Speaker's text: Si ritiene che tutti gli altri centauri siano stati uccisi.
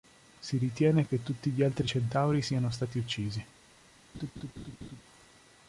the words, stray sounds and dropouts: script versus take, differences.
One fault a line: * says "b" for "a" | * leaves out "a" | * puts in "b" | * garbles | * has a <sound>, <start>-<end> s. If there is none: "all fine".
* has a laugh, 4.1-5.0 s